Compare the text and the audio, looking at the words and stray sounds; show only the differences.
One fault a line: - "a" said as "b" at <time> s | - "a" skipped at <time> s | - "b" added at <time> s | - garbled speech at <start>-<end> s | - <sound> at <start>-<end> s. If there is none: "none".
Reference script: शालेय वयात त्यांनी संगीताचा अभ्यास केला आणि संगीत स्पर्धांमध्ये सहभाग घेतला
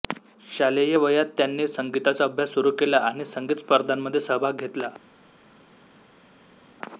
- "सुरू" added at 2.5 s